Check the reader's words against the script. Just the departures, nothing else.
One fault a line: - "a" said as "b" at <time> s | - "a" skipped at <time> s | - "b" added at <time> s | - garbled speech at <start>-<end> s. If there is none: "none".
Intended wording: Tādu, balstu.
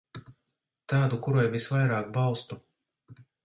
- "kurai visvairāk" added at 1.3 s